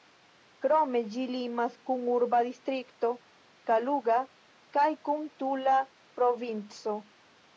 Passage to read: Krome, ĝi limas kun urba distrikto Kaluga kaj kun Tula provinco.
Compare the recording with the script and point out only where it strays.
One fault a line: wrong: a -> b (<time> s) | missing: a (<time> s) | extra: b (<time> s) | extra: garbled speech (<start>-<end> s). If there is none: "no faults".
no faults